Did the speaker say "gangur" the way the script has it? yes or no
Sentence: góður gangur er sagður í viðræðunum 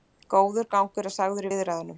yes